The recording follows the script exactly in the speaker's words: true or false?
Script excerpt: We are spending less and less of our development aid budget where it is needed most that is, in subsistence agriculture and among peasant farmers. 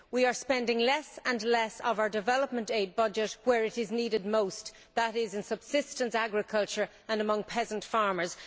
true